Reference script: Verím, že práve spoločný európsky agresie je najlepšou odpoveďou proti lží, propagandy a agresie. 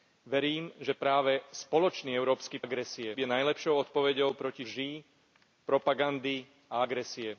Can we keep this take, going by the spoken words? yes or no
yes